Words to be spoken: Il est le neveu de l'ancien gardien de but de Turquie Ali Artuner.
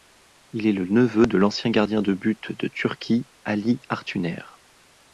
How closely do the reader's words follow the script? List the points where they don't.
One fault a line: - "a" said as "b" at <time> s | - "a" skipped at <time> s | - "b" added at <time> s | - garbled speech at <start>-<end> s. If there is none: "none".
none